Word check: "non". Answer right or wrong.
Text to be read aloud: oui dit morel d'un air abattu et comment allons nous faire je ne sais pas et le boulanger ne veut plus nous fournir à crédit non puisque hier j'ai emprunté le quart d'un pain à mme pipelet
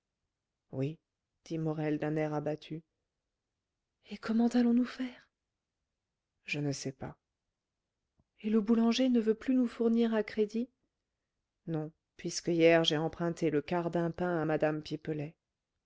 right